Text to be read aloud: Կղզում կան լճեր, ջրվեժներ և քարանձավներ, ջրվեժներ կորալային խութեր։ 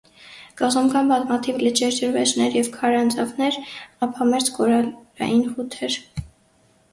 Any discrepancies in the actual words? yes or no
yes